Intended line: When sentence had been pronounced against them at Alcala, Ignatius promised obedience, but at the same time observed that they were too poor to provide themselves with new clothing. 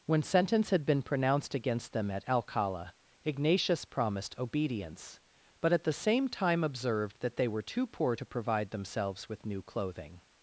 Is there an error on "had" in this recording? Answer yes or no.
no